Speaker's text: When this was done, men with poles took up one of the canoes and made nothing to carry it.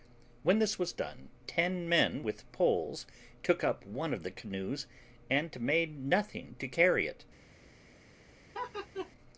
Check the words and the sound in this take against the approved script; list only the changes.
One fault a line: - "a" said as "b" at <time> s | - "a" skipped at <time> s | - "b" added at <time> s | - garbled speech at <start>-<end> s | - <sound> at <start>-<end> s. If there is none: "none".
- "ten" added at 1.4 s
- laugh at 8.5-9.1 s